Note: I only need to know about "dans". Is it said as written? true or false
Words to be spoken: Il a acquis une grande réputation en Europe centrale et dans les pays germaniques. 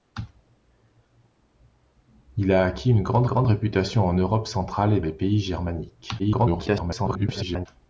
false